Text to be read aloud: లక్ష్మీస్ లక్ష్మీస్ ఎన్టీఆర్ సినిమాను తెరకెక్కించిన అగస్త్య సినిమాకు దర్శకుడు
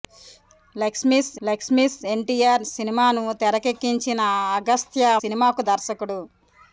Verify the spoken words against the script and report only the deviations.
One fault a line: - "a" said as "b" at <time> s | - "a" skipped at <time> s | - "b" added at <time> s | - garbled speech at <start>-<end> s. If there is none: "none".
none